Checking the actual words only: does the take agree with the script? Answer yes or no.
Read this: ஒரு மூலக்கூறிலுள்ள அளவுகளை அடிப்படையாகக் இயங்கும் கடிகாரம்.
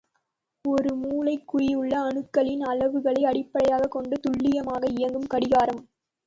no